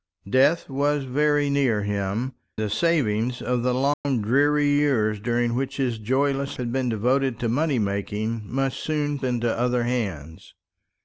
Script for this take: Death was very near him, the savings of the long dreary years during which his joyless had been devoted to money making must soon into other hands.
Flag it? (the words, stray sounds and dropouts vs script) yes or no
yes